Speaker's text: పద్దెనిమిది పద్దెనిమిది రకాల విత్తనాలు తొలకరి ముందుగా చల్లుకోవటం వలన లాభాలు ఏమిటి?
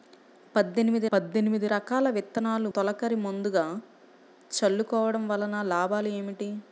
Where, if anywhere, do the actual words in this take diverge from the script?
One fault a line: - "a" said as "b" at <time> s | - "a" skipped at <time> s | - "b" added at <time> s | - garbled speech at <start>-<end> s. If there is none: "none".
none